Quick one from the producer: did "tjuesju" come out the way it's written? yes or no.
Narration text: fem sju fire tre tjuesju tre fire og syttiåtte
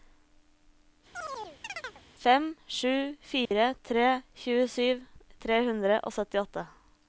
yes